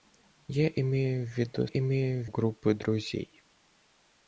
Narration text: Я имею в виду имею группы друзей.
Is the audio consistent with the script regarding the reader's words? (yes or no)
yes